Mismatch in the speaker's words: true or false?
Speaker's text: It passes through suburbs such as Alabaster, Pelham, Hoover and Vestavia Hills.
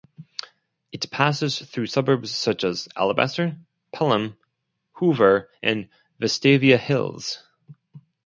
false